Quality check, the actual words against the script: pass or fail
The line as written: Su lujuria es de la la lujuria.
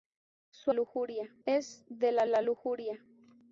pass